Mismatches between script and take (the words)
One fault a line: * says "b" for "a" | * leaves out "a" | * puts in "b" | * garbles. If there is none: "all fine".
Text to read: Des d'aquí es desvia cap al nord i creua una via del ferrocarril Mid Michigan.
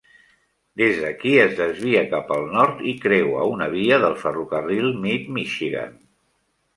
all fine